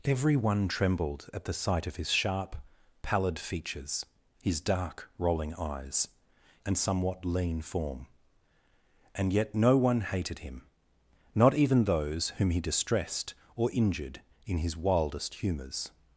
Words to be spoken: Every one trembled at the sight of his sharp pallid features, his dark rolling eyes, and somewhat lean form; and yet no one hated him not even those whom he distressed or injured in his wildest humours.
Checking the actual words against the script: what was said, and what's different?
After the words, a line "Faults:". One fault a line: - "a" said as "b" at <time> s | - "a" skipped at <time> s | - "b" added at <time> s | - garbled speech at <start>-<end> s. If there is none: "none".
Every one trembled at the sight of his sharp pallid features, his dark rolling eyes, and somewhat lean form; and yet no one hated him not even those whom he distressed or injured in his wildest humours.
Faults:
none